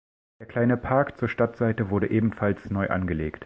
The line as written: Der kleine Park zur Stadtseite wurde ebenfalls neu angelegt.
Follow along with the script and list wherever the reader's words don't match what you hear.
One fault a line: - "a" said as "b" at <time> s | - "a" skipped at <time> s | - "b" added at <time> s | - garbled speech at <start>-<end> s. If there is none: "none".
none